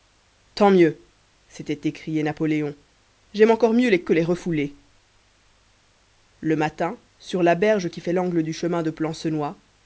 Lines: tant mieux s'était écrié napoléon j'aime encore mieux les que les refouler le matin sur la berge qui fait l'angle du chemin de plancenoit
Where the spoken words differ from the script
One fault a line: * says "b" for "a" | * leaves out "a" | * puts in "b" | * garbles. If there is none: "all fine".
all fine